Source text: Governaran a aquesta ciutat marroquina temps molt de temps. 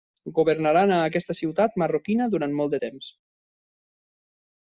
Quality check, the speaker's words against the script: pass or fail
fail